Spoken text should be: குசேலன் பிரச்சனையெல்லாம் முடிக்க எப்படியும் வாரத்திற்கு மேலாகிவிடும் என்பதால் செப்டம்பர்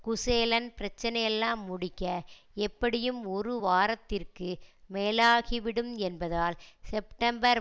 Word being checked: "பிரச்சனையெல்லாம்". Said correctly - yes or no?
yes